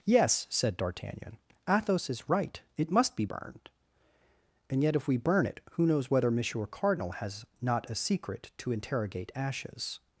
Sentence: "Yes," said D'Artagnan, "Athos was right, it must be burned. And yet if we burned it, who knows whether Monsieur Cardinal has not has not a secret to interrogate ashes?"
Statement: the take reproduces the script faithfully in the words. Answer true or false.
false